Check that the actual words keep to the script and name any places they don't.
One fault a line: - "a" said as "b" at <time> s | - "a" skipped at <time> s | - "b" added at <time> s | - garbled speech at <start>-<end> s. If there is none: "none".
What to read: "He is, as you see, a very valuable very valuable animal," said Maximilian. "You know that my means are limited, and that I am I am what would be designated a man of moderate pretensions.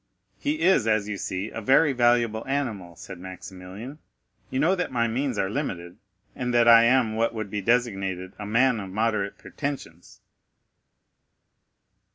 - "very valuable" skipped at 2.4 s
- "I am" skipped at 7.2 s